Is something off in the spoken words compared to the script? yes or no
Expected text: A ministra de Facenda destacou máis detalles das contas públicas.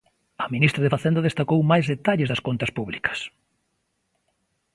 no